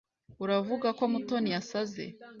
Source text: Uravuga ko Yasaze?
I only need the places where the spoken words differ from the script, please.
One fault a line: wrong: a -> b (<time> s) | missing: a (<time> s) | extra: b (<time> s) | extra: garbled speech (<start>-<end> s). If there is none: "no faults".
extra: Mutoni (1.1 s)